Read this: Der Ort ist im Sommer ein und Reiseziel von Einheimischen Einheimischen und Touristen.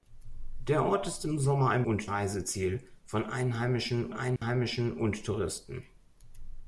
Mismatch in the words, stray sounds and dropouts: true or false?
true